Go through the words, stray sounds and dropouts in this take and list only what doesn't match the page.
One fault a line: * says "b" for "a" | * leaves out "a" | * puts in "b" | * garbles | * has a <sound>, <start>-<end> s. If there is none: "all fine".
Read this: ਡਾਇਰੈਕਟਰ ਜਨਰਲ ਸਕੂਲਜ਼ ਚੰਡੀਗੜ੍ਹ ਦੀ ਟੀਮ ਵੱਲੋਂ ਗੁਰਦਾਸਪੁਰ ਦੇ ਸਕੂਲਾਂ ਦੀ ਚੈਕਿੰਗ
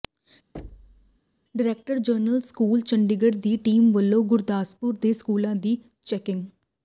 * has a thud, 0.5-1.2 s